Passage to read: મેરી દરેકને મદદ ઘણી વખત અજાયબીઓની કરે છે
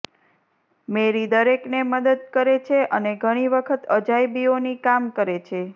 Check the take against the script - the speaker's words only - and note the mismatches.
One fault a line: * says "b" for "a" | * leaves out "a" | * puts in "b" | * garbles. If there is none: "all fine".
* puts in "કરે છે અને"
* puts in "કામ"